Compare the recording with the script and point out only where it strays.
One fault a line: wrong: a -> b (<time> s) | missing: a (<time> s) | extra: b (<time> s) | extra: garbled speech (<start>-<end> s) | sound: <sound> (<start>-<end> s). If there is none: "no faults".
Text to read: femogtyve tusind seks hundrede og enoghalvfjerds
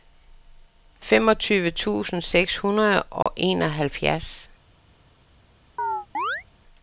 sound: dropout (3.2-3.3 s)
sound: chirp (5.8-6.4 s)